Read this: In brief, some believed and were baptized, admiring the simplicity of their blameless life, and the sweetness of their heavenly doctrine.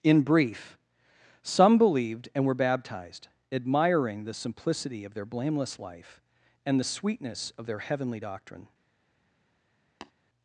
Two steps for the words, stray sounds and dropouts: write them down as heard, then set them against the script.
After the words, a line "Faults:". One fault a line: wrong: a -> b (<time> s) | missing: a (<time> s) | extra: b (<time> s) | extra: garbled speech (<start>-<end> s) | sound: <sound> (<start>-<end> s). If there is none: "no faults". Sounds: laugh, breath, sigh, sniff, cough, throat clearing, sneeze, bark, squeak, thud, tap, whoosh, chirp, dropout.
In brief, some believed and were baptized, admiring the simplicity of their blameless life, and the sweetness of their heavenly doctrine.
Faults:
sound: tap (10.0-10.1 s)